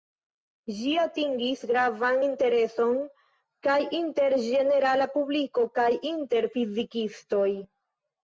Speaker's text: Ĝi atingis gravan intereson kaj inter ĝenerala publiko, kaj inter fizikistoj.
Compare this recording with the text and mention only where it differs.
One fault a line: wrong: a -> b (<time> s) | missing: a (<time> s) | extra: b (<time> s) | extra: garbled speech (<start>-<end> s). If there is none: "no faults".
no faults